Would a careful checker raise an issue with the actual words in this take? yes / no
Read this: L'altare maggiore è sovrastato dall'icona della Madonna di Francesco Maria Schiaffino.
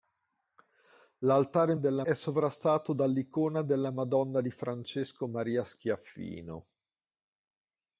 yes